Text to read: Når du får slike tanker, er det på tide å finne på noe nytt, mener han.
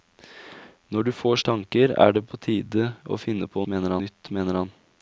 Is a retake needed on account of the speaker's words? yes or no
yes